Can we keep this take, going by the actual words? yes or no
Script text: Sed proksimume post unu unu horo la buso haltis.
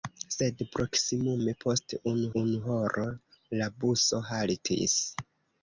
yes